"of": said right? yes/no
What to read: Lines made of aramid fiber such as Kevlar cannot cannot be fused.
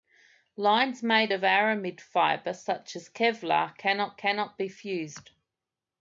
yes